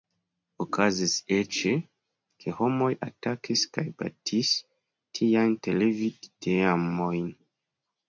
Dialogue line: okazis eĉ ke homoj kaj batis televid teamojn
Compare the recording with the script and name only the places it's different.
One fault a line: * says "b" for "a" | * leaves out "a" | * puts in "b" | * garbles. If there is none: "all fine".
* puts in "atakis"
* puts in "tiajn"